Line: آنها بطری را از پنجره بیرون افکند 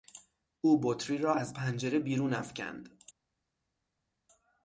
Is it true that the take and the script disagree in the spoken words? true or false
true